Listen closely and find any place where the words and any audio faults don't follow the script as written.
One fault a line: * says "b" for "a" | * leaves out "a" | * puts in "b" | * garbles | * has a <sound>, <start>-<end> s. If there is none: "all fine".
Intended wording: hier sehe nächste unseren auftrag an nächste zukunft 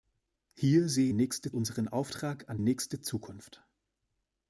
all fine